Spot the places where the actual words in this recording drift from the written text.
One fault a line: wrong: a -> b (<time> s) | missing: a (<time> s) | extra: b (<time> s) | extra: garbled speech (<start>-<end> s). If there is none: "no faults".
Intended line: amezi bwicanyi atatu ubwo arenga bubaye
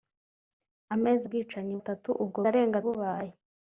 no faults